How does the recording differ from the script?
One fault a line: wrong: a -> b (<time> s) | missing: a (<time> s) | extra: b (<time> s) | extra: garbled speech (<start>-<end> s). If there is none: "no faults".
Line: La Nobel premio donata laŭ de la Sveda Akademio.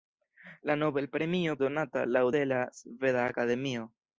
no faults